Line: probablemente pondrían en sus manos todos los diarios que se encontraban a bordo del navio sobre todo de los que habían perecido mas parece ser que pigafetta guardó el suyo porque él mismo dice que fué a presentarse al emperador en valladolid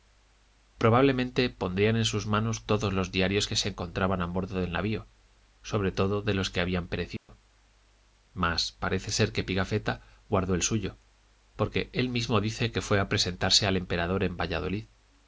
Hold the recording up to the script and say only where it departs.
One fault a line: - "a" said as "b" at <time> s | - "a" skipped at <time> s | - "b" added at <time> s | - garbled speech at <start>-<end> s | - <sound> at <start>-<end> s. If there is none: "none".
- dropout at 7.2-7.3 s